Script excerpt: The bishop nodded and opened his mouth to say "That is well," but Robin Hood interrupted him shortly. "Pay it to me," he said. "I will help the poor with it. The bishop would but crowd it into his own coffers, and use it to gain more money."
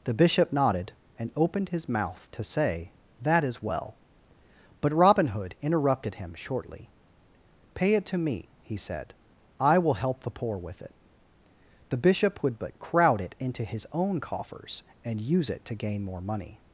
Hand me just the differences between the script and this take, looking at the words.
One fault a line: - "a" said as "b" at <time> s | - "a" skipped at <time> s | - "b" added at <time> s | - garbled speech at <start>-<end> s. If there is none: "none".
none